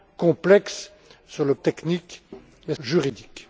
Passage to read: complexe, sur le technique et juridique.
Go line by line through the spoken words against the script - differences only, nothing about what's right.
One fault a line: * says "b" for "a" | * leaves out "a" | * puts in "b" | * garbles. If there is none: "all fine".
all fine